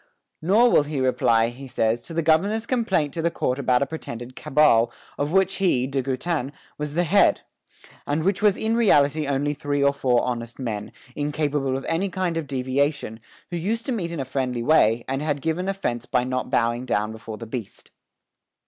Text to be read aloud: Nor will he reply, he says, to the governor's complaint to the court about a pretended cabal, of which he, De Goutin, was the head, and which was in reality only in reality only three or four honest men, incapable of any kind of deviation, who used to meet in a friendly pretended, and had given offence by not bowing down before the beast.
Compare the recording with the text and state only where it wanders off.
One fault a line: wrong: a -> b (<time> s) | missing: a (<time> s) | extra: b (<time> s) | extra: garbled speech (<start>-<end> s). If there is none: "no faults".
missing: in reality only (9.5 s)
wrong: pretended -> way (14.6 s)